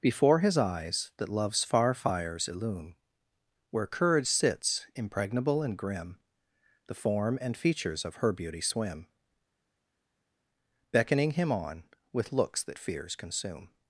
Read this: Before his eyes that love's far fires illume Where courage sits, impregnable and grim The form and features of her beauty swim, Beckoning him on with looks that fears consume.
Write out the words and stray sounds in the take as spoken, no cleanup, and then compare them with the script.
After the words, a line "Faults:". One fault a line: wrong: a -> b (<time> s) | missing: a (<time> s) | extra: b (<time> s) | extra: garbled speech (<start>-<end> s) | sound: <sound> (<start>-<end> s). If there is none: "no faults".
Before his eyes that love's far fires illume Where courage sits, impregnable and grim The form and features of her beauty swim, Beckoning him on with looks that fears consume.
Faults:
no faults